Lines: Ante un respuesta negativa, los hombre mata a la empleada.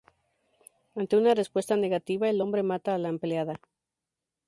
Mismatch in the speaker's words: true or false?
true